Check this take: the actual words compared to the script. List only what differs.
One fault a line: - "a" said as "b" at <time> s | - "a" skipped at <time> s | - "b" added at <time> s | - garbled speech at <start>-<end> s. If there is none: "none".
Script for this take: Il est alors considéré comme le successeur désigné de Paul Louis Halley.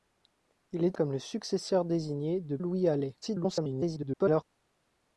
- "alors considéré" skipped at 1.0 s
- "Paul" skipped at 2.6 s
- garbled speech at 3.2-4.4 s